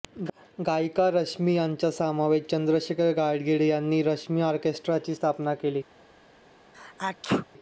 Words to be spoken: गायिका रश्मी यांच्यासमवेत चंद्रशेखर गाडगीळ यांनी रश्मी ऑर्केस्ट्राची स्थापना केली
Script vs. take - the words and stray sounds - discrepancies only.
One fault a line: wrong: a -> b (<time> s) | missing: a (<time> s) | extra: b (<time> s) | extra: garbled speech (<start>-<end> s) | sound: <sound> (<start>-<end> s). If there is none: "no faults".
sound: sneeze (6.7-7.5 s)